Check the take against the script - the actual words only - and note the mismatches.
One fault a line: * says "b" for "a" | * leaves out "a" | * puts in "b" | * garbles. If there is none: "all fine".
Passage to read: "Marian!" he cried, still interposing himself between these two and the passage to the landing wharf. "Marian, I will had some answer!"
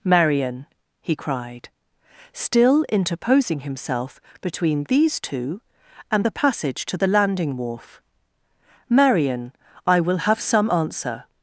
* says "have" for "had"